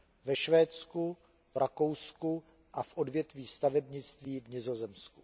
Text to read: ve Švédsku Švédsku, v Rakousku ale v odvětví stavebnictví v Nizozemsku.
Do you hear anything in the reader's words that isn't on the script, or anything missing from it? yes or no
yes